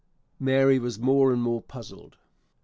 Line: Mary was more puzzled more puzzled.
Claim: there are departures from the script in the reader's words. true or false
true